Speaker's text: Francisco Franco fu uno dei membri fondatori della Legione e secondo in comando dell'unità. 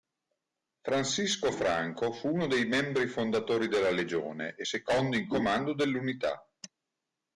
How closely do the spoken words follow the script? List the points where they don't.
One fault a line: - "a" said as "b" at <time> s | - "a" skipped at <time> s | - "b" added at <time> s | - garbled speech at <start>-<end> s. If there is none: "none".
none